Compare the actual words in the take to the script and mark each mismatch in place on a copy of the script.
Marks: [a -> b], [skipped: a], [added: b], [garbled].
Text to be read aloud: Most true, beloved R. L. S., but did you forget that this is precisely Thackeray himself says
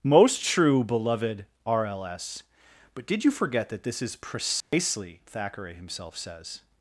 Most true, beloved R. L. S., but did you forget that this is precisely Thackeray himself says